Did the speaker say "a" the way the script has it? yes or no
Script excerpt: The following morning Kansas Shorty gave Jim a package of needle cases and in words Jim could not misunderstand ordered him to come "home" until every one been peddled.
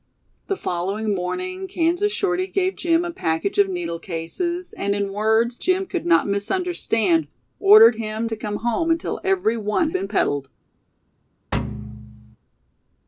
yes